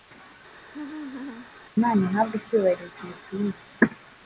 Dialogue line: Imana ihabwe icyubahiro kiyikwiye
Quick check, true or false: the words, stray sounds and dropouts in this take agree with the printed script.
false